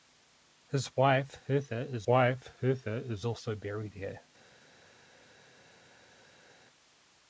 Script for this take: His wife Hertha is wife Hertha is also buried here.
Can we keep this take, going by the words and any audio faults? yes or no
yes